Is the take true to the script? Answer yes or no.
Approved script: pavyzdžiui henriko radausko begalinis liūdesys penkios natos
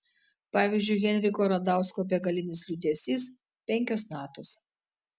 yes